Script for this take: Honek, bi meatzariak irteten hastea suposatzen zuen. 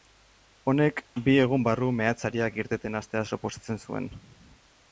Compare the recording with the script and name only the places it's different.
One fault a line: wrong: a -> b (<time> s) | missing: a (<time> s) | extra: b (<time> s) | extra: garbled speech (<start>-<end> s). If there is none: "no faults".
extra: egun barru (1.4 s)